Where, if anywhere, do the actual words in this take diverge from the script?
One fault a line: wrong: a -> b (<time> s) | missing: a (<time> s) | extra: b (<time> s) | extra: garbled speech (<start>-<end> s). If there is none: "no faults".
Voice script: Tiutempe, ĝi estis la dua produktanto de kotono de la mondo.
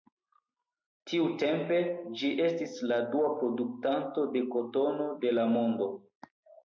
no faults